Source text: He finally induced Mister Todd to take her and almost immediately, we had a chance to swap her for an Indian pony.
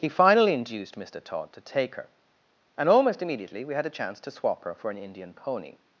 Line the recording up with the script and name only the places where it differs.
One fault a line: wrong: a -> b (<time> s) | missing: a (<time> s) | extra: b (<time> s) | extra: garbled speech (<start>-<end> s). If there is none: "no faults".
no faults